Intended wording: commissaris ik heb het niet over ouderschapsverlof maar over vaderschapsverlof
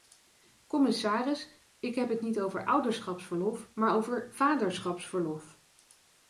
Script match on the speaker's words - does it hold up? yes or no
yes